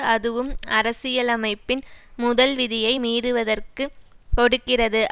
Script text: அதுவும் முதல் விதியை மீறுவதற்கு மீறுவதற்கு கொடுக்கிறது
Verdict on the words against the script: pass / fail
fail